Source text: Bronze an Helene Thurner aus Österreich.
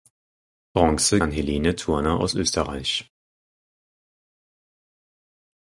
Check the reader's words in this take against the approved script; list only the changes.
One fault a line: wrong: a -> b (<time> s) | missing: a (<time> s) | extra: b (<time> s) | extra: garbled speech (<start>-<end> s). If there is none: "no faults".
no faults